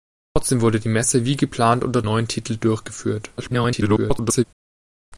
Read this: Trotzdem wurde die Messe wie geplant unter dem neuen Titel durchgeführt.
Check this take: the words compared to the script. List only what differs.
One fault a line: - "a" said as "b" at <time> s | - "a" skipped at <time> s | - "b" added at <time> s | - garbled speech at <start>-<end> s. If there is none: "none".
- "dem" skipped at 2.0 s
- garbled speech at 3.4-4.4 s